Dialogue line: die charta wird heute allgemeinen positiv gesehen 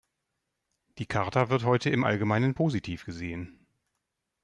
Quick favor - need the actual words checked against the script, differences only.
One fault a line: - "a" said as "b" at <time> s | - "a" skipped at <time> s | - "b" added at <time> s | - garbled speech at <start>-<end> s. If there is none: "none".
- "im" added at 1.9 s